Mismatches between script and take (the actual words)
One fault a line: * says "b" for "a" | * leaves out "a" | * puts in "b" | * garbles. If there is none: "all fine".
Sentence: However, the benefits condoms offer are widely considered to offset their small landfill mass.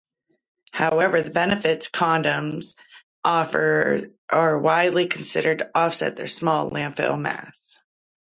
all fine